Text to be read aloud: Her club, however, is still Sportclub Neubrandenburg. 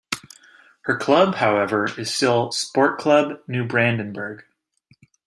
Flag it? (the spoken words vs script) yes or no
no